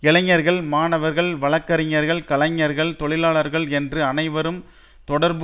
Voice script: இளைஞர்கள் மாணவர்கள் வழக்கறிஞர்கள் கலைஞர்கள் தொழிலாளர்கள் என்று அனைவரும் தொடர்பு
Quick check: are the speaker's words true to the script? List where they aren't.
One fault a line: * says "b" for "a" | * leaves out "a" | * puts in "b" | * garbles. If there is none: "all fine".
all fine